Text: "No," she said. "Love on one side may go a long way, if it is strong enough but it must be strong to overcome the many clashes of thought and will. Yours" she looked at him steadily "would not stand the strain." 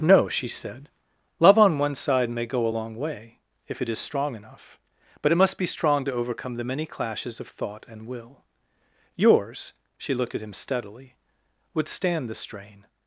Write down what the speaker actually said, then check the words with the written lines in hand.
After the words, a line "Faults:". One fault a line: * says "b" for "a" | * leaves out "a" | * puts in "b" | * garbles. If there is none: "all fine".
"No," she said. "Love on one side may go a long way, if it is strong enough but it must be strong to overcome the many clashes of thought and will. Yours" she looked at him steadily "would stand the strain."
Faults:
* leaves out "not"